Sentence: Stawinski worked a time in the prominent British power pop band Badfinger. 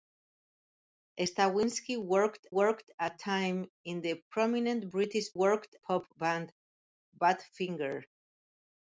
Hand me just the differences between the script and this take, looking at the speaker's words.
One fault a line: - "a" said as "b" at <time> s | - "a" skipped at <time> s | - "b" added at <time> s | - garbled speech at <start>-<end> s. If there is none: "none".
- "worked" added at 2.5 s
- "power" said as "worked" at 5.3 s